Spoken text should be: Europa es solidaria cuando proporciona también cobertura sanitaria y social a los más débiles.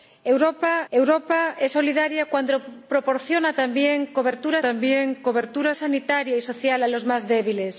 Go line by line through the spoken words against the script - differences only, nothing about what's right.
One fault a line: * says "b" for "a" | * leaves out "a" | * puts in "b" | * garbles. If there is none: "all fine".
* puts in "europa"
* puts in "también cobertura"